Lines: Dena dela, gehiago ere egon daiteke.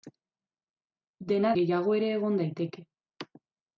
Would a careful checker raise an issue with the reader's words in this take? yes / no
yes